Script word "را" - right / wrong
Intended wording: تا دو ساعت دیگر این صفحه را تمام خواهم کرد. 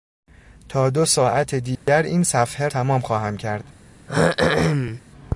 wrong